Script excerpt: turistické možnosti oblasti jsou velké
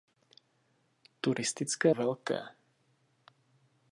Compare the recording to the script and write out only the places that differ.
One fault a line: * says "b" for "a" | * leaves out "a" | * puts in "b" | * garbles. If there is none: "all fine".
* leaves out "možnosti oblasti jsou"